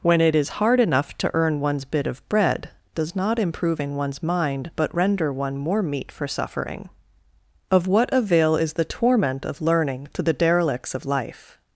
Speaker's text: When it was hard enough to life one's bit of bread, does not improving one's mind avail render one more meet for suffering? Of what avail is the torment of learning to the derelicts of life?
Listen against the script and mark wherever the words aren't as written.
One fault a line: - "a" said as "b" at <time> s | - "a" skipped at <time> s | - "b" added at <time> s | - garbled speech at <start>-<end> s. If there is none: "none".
- "was" said as "is" at 0.3 s
- "life" said as "earn" at 1.3 s
- "avail" said as "but" at 4.8 s